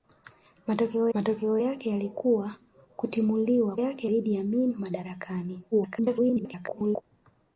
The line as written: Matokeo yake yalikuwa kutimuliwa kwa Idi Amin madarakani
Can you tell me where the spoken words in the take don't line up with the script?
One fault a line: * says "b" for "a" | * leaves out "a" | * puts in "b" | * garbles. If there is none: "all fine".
* puts in "matokeo"
* says "yake" for "kwa"
* garbles